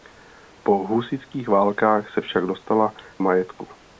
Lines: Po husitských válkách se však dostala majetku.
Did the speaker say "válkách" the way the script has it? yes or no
yes